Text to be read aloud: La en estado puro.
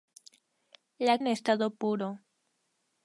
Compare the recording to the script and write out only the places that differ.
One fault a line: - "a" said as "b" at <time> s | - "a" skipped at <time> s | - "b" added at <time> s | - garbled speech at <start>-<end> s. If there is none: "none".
none